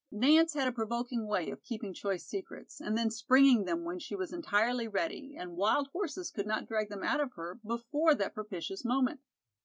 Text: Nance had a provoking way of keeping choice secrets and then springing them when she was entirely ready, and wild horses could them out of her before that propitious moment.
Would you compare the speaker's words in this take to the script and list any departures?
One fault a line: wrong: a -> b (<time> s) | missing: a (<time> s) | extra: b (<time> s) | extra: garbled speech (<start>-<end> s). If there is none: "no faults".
extra: not drag (6.5 s)